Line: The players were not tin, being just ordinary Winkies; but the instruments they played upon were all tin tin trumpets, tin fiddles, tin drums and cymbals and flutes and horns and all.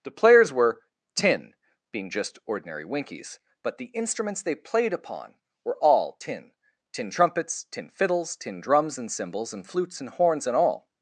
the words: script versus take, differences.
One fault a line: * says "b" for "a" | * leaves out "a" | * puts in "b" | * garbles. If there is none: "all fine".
* leaves out "not"